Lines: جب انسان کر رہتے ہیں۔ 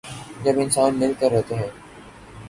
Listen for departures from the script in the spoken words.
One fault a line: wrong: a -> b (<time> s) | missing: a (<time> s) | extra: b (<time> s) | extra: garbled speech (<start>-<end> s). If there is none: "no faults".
extra: مل (1.0 s)